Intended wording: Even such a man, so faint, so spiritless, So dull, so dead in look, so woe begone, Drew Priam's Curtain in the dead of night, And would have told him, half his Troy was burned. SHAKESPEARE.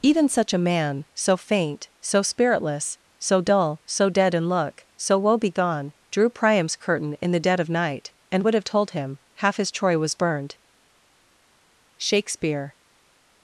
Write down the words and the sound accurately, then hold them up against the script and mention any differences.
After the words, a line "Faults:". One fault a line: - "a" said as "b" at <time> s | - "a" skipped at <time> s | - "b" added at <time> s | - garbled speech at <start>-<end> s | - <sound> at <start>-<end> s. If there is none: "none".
Even such a man, so faint, so spiritless, So dull, so dead in look, so woe begone, Drew Priam's Curtain in the dead of night, And would have told him, half his Troy was burned. SHAKESPEARE.
Faults:
none